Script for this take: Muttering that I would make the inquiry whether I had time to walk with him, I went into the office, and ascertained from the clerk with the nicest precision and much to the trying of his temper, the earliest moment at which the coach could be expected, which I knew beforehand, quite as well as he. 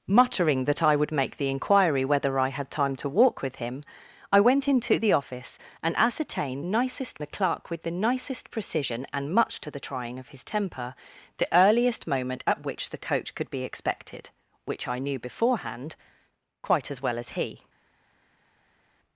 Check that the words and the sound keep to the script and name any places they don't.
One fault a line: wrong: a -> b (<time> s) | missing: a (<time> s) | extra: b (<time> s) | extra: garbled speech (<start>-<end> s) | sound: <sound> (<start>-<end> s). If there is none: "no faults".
wrong: from -> nicest (6.6 s)